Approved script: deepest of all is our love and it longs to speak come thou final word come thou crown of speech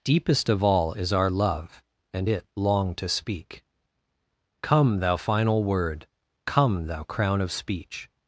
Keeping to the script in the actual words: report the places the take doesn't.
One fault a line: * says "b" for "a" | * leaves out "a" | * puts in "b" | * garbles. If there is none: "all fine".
* says "long" for "longs"